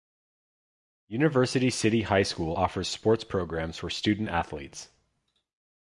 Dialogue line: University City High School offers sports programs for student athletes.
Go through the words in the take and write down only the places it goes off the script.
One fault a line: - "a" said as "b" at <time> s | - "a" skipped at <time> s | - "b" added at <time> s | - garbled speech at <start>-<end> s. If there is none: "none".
none